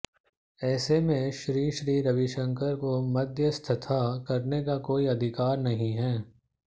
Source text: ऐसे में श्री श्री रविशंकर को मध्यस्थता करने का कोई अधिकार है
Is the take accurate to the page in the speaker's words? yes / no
no